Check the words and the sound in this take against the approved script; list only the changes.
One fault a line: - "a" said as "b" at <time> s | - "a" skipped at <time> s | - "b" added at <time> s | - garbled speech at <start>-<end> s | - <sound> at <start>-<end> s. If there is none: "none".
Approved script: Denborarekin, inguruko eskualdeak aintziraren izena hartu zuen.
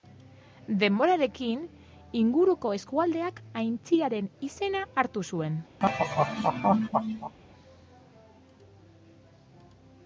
- laugh at 5.8-7.3 s